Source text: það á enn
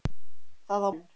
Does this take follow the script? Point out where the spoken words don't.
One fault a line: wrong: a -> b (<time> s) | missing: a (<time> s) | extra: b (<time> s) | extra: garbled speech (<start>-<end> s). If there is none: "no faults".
no faults